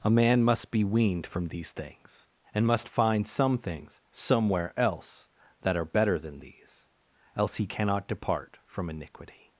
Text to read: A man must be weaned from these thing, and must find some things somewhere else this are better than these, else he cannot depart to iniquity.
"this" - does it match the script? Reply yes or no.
no